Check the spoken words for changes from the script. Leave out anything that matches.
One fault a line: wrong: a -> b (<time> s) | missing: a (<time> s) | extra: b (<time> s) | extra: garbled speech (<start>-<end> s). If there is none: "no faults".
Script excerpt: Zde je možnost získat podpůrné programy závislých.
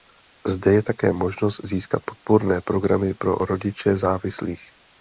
extra: také (0.8 s)
extra: pro rodiče (3.1 s)